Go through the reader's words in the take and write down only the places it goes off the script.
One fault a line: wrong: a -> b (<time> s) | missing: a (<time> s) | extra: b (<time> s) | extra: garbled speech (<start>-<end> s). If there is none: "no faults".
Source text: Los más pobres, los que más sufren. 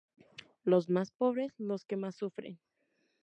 no faults